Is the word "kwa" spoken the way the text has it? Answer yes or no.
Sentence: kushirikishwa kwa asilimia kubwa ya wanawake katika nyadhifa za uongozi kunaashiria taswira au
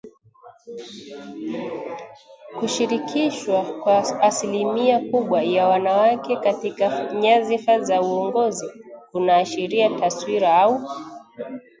yes